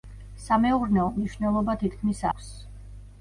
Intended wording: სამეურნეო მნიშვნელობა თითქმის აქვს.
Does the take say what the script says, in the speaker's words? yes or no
yes